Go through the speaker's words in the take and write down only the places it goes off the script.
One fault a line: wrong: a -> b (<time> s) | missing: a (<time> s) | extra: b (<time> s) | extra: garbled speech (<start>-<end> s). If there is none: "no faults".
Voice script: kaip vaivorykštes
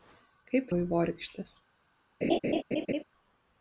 no faults